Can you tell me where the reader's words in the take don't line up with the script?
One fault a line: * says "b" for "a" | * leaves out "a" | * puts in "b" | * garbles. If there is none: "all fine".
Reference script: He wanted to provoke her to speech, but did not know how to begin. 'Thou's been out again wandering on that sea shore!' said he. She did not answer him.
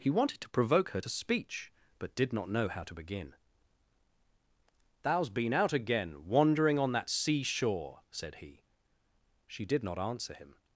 all fine